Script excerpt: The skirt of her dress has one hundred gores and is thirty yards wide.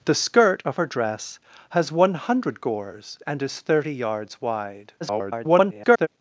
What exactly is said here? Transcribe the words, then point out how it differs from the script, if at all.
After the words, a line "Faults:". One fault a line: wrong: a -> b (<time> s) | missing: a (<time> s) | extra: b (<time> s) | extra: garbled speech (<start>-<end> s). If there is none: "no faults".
The skirt of her dress has one hundred gores and is thirty yards wide. [garbled]
Faults:
extra: garbled speech (5.0-6.1 s)